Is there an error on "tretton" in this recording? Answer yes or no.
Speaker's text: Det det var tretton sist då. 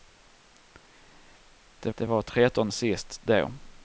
no